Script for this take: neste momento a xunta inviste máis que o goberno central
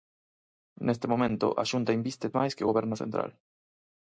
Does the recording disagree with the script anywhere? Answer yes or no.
no